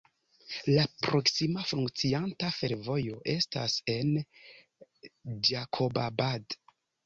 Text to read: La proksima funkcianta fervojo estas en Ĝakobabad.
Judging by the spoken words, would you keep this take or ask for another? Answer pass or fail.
pass